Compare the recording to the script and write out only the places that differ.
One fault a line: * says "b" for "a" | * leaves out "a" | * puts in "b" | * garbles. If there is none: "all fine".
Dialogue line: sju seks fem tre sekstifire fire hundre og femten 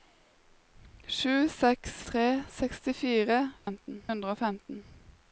* leaves out "fem"
* says "femten" for "fire"